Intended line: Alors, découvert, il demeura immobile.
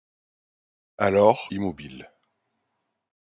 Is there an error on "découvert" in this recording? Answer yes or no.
yes